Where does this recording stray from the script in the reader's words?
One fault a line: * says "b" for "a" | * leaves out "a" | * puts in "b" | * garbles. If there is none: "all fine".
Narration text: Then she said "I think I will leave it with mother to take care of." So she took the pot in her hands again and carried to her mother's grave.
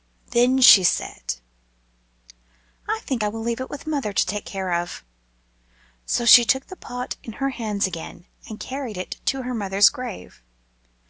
* puts in "it"